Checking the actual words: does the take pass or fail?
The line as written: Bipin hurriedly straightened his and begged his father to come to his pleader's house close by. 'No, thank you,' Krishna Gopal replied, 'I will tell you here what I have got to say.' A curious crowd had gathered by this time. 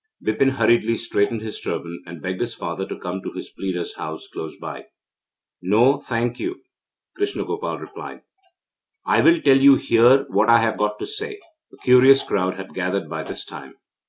fail